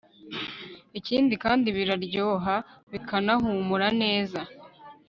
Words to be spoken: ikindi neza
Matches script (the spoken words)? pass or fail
fail